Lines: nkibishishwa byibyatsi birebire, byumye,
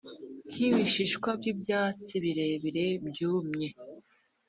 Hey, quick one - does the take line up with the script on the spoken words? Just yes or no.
yes